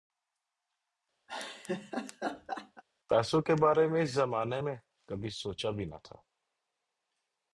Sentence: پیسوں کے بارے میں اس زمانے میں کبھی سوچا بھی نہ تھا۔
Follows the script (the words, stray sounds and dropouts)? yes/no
no